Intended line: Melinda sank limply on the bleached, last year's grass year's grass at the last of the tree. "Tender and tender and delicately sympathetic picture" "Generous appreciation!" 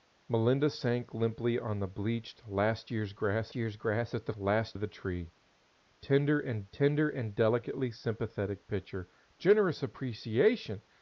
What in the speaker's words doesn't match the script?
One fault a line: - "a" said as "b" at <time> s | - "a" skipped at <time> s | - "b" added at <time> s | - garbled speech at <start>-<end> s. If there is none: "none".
none